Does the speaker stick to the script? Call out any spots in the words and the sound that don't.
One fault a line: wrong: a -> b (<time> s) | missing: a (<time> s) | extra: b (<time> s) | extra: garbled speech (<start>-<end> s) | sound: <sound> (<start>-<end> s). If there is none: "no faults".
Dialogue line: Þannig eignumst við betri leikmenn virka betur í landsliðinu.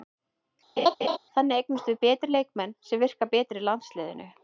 sound: laugh (0.8-1.2 s)
extra: sem (2.9 s)